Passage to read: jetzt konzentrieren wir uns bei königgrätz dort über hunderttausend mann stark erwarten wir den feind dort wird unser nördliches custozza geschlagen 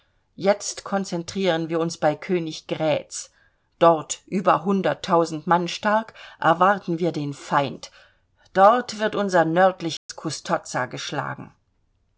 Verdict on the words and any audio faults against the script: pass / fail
fail